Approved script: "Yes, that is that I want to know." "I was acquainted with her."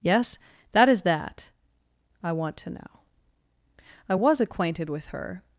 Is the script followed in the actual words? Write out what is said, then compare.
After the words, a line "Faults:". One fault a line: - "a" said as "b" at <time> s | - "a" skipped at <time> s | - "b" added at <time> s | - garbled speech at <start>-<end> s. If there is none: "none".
"Yes, that is that I want to know." "I was acquainted with her."
Faults:
none